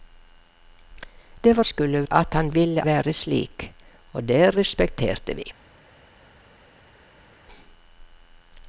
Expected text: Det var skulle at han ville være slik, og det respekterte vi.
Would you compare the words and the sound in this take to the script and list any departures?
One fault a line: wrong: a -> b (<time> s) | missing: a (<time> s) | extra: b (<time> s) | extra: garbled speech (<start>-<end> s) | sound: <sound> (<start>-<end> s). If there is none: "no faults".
no faults